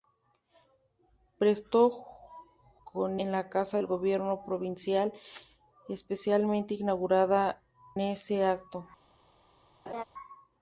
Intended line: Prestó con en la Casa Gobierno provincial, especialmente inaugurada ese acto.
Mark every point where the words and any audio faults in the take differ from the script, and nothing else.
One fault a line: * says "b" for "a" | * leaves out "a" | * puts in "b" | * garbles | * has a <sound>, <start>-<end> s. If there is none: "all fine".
* has a laugh, 9.9-10.0 s